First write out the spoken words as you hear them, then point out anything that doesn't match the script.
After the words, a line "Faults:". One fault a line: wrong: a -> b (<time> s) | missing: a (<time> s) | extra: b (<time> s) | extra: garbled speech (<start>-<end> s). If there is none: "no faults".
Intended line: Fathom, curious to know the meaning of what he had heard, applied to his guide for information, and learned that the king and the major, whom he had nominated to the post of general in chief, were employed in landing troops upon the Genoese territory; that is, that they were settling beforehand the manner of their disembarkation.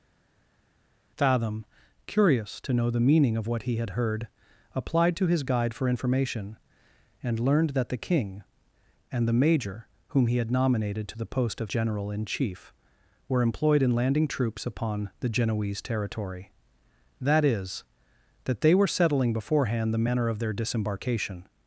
Fathom, curious to know the meaning of what he had heard, applied to his guide for information, and learned that the king and the major, whom he had nominated to the post of general in chief, were employed in landing troops upon the Genoese territory; that is, that they were settling beforehand the manner of their disembarkation.
Faults:
no faults